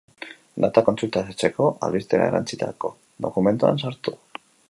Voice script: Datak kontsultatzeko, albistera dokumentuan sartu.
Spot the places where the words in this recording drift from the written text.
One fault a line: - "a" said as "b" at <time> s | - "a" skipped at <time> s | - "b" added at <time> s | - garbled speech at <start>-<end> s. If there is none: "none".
- "erantsitako" added at 2.3 s